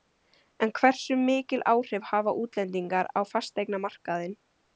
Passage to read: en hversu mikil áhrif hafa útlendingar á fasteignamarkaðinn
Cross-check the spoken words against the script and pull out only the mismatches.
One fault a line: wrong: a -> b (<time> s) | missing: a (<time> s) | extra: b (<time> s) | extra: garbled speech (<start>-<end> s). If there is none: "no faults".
no faults